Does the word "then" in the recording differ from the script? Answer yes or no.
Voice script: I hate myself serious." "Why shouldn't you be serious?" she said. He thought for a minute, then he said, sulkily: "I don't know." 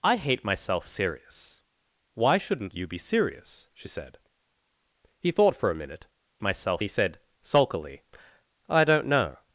yes